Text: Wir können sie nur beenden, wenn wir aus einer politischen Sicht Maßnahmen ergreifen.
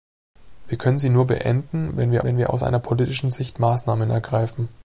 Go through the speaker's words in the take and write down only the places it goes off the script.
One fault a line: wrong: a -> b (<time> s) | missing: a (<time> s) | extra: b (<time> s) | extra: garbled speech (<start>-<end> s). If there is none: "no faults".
extra: wenn wir (2.2 s)